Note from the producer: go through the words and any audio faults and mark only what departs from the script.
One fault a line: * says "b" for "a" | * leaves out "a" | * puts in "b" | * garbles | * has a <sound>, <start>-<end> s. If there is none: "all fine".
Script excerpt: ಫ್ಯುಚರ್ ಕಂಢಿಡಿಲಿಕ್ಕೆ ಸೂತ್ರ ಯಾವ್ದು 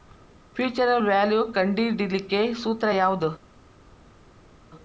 * puts in "ವ್ಯಾಲ್ಯು"